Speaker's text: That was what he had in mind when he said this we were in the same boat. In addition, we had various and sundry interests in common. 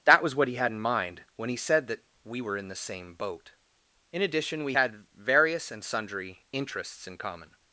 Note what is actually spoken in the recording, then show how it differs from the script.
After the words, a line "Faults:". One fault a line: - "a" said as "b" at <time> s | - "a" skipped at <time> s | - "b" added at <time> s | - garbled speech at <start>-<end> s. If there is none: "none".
That was what he had in mind when he said that we were in the same boat. In addition, we had various and sundry interests in common.
Faults:
- "this" said as "that" at 1.9 s